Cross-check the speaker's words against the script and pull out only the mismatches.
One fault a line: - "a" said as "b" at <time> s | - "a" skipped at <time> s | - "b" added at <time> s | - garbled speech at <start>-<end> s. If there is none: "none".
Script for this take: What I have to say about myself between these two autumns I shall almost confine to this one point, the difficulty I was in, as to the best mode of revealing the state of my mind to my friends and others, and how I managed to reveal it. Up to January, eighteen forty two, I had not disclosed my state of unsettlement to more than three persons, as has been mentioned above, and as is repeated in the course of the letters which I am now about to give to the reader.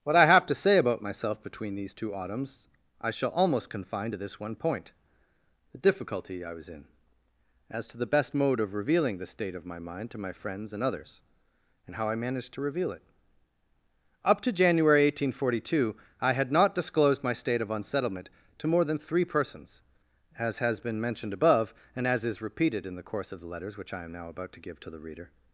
none